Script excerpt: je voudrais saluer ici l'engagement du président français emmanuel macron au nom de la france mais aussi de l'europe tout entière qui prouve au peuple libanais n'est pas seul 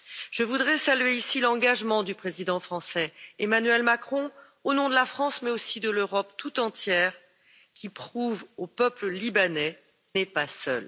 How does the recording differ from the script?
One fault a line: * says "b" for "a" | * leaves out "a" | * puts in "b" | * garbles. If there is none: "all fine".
all fine